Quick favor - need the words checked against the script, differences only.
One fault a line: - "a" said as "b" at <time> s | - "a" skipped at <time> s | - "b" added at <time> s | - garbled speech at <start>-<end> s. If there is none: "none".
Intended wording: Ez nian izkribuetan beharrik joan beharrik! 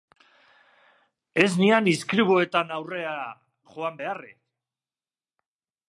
- "beharrik" said as "aurrera" at 2.8 s